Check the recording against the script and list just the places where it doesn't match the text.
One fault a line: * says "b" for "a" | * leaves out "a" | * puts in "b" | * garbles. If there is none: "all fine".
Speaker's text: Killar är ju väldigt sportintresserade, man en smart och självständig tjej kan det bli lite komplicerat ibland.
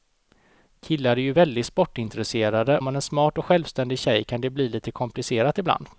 all fine